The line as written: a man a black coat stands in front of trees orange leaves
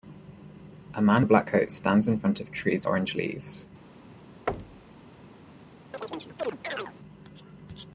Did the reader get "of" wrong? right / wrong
right